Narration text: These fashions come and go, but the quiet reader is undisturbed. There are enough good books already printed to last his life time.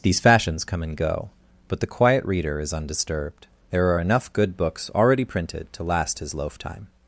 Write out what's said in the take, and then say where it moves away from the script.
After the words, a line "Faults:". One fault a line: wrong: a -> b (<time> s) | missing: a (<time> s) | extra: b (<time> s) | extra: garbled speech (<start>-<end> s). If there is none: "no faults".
These fashions come and go, but the quiet reader is undisturbed. There are enough good books already printed to last his loaf time.
Faults:
wrong: life -> loaf (6.3 s)